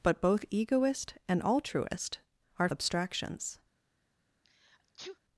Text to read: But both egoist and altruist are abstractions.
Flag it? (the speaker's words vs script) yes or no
no